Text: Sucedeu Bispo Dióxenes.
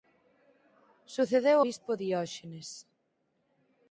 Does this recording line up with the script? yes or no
yes